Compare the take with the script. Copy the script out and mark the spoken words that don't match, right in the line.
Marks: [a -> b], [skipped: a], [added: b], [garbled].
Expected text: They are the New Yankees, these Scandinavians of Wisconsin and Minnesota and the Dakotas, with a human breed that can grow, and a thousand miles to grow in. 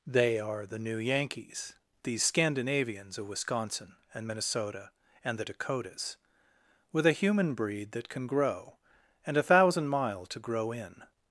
They are the New Yankees, these Scandinavians of Wisconsin and Minnesota and the Dakotas, with a human breed that can grow, and a thousand [miles -> mile] to grow in.